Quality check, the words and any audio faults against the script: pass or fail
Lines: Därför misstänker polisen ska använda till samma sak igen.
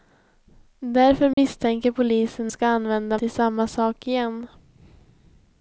fail